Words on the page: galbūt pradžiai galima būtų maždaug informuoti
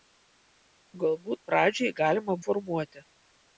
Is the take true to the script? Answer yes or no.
no